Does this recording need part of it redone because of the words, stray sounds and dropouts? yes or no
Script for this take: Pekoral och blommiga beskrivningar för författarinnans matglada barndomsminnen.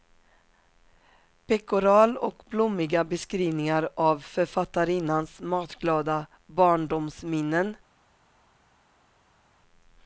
yes